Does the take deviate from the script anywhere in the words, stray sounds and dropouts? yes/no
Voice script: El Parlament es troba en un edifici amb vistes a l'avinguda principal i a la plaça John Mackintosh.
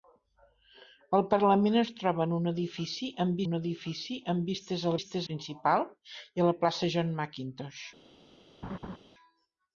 yes